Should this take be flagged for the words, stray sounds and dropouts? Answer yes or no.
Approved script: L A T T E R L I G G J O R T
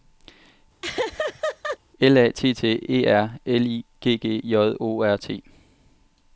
yes